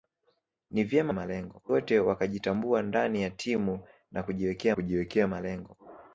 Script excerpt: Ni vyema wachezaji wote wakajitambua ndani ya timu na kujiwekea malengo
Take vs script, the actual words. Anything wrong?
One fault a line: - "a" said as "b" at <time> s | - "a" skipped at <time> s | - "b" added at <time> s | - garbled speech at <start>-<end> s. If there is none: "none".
- "wachezaji" said as "malengo" at 1.1 s
- "kujiwekea" added at 4.7 s